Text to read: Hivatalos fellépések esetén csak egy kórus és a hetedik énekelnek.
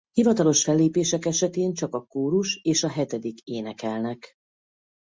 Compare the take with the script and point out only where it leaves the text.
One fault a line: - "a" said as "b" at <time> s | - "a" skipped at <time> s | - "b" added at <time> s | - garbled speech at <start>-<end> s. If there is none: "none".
- "egy" said as "a" at 1.9 s